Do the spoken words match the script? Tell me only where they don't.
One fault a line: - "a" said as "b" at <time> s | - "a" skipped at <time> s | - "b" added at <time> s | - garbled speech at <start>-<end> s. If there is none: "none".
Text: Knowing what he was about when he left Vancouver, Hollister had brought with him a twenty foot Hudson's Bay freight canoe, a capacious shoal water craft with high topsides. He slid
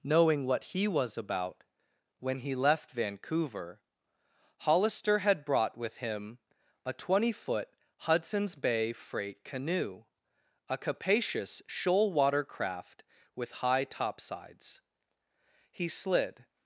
none